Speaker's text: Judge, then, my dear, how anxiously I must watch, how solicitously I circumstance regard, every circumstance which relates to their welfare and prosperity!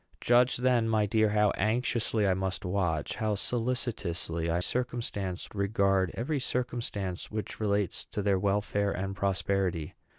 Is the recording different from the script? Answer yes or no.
no